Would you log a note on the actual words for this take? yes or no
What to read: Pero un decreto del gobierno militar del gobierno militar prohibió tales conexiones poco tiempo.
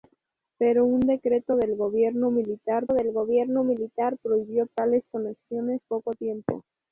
no